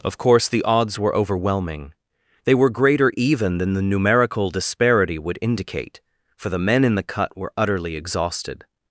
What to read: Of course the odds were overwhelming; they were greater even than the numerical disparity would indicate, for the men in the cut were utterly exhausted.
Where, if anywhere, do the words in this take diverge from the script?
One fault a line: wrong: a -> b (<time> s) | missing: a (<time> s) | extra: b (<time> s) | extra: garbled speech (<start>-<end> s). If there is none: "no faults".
no faults